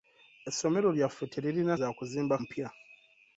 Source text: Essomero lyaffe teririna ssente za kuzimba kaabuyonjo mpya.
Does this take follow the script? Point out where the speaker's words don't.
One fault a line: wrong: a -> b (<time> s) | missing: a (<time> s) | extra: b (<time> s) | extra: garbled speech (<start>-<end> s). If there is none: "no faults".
missing: ssente (1.8 s)
missing: kaabuyonjo (2.4 s)